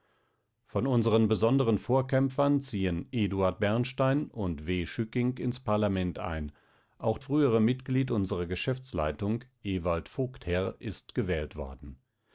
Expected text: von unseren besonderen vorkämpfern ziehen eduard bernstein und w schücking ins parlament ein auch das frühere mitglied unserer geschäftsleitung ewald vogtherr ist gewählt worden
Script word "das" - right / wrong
wrong